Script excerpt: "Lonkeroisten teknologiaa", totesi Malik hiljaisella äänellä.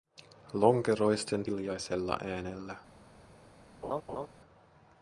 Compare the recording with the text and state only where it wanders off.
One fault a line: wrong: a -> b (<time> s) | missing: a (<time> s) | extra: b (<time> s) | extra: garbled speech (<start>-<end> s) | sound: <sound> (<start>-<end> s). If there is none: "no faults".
missing: teknologiaa totesi Malik (1.4 s)
sound: laugh (3.8-4.3 s)